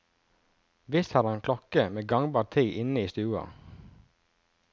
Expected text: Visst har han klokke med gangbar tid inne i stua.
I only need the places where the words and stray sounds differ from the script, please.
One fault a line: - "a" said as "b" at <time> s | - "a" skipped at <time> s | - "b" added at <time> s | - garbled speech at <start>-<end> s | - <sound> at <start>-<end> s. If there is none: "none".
none